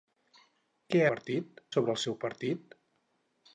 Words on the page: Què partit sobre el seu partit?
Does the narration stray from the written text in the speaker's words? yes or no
no